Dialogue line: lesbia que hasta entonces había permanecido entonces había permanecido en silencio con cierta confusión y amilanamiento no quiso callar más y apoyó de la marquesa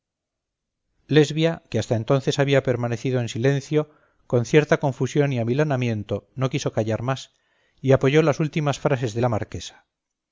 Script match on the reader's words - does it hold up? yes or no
no